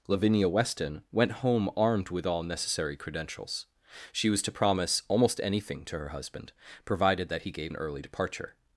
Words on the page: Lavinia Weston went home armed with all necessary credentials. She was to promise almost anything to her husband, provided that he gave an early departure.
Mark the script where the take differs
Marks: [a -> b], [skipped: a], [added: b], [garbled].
Lavinia Weston went home armed with all necessary credentials. She was to promise almost anything to her husband, provided that he gave an early departure.